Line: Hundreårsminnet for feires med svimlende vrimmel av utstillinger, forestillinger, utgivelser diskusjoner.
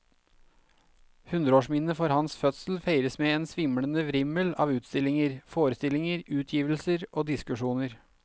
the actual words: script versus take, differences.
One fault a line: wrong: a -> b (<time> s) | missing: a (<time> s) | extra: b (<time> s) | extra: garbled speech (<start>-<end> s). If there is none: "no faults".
extra: hans fødsel (2.1 s)
extra: en (3.4 s)
extra: og (7.1 s)